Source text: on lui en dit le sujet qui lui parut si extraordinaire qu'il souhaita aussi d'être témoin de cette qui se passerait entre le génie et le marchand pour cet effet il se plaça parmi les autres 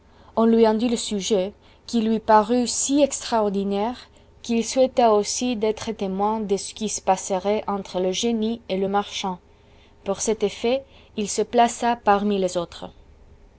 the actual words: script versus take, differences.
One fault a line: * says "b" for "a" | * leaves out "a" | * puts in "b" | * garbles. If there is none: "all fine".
* says "ce" for "cette"